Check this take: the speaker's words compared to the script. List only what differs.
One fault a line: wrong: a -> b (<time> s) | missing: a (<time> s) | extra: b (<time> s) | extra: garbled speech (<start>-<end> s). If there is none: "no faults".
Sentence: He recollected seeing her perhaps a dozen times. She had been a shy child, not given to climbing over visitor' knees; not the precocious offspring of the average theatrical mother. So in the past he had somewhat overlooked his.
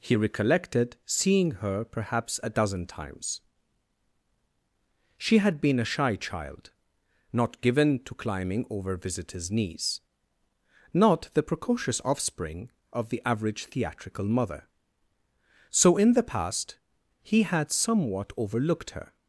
wrong: visitor -> visitors (9.0 s)
wrong: his -> her (18.9 s)